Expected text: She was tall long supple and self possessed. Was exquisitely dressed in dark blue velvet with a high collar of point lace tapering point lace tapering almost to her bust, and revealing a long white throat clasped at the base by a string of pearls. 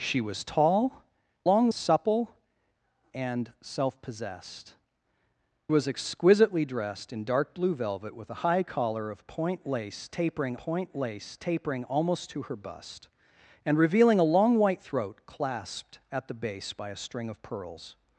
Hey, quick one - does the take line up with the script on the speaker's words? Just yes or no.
yes